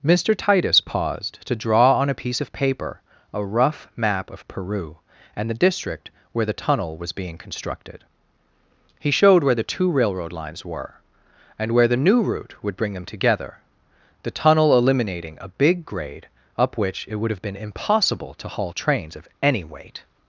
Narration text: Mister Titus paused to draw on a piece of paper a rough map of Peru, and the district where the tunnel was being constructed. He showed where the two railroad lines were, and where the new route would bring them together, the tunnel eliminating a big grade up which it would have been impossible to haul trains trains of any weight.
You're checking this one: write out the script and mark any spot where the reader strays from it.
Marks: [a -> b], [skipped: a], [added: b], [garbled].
Mister Titus paused to draw on a piece of paper a rough map of Peru, and the district where the tunnel was being constructed. He showed where the two railroad lines were, and where the new route would bring them together, the tunnel eliminating a big grade up which it would have been impossible to haul trains [skipped: trains] of any weight.